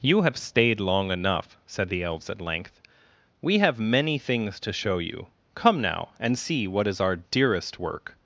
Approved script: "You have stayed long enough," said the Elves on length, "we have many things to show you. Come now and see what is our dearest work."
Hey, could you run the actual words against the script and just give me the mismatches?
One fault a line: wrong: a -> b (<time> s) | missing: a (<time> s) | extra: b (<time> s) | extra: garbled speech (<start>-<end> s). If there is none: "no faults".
wrong: on -> at (2.3 s)